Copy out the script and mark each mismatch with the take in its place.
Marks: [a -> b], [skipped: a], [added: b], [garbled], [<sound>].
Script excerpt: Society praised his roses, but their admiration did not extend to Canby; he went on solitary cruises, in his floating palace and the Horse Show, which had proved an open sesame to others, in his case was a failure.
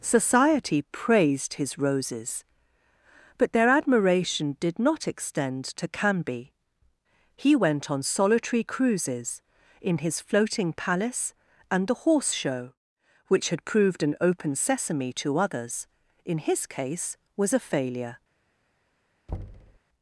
Society praised his roses, but their admiration did not extend to Canby; he went on solitary cruises, in his floating palace and the Horse Show, which had proved an open sesame to others, in his case was a failure. [thud]